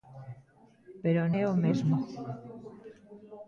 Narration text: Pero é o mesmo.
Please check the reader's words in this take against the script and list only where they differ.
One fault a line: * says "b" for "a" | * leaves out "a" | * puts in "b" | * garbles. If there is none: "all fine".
all fine